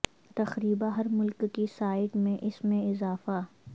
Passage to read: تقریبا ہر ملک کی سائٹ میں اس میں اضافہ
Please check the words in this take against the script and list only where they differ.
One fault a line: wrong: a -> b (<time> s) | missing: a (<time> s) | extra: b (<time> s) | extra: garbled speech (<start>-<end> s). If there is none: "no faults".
no faults